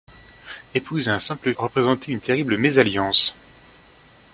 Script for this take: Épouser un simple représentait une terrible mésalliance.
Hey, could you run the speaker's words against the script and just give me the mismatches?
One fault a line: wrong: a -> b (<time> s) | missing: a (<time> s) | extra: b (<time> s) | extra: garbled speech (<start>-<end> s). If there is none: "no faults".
no faults